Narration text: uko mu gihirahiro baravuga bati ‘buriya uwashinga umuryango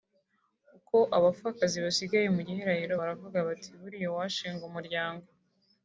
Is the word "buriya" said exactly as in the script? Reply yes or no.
yes